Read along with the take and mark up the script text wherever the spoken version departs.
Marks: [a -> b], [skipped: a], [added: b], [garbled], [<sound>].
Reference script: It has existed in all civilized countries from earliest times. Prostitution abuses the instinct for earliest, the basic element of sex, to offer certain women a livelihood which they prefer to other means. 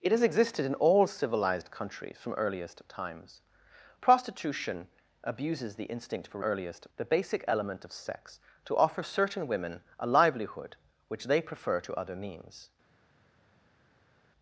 It has existed in all civilized countries from earliest times. Prostitution abuses the instinct for earliest, the basic element of sex, to offer certain women a livelihood which they prefer to other means.